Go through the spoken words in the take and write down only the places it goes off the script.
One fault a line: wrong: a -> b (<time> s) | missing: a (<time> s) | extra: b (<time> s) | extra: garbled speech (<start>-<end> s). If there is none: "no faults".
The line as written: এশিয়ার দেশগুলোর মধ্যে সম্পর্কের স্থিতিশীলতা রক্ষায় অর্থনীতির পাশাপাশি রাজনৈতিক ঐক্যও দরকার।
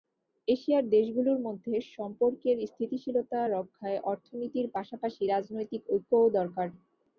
no faults